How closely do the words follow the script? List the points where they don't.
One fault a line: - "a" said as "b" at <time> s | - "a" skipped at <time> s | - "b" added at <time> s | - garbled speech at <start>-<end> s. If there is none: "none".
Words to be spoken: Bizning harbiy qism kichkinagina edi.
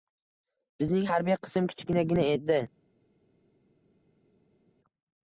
none